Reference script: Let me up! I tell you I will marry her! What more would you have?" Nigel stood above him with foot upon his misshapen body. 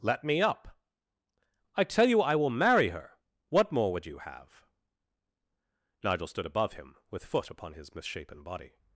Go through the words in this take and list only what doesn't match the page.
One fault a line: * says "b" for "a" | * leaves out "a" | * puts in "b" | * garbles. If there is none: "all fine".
all fine